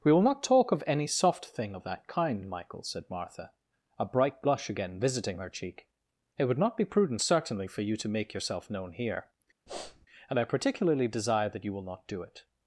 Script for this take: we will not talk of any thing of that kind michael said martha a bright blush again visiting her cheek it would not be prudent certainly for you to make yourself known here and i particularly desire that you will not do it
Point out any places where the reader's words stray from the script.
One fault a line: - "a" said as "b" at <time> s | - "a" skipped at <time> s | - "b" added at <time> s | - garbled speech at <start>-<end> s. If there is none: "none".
- "soft" added at 1.1 s